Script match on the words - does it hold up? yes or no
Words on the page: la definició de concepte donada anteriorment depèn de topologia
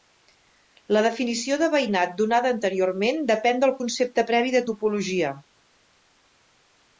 no